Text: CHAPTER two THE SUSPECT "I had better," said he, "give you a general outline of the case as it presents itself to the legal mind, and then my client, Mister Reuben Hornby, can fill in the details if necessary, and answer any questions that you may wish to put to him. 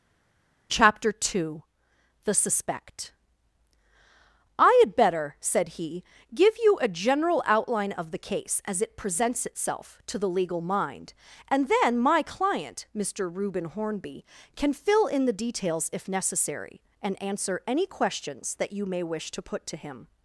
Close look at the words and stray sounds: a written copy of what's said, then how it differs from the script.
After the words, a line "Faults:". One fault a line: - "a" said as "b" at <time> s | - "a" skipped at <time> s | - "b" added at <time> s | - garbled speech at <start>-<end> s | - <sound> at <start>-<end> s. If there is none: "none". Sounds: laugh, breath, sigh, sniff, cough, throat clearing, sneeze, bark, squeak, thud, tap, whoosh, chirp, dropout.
CHAPTER two THE SUSPECT "I had better," said he, "give you a general outline of the case as it presents itself to the legal mind, and then my client, Mister Reuben Hornby, can fill in the details if necessary, and answer any questions that you may wish to put to him.
Faults:
none